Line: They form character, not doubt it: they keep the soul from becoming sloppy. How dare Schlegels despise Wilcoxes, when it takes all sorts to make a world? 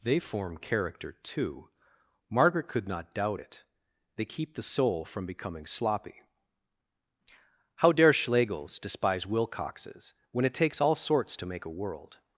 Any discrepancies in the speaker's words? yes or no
yes